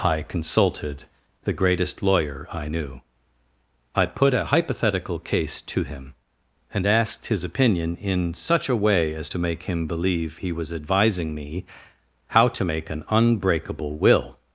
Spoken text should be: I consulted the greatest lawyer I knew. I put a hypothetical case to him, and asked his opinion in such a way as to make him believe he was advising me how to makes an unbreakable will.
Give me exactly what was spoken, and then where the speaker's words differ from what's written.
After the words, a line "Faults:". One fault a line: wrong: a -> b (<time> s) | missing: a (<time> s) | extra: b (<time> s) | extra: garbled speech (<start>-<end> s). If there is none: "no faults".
I consulted the greatest lawyer I knew. I put a hypothetical case to him, and asked his opinion in such a way as to make him believe he was advising me how to make an unbreakable will.
Faults:
wrong: makes -> make (12.6 s)